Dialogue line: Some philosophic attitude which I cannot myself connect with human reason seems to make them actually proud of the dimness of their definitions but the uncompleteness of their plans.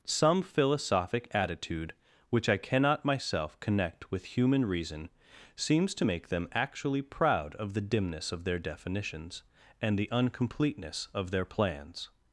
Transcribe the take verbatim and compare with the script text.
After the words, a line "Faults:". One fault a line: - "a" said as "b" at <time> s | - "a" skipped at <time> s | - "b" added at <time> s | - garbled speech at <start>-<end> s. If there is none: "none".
Some philosophic attitude which I cannot myself connect with human reason seems to make them actually proud of the dimness of their definitions and the uncompleteness of their plans.
Faults:
- "but" said as "and" at 9.8 s